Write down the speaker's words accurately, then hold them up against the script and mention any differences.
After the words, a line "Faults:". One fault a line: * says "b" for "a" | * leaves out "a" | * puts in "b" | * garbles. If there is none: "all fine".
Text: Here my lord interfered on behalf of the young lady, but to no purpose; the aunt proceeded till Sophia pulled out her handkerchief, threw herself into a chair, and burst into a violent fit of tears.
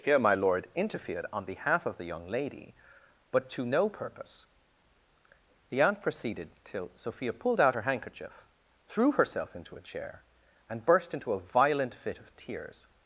Here my lord interfered on behalf of the young lady, but to no purpose; the aunt proceeded till Sophia pulled out her handkerchief, threw herself into a chair, and burst into a violent fit of tears.
Faults:
all fine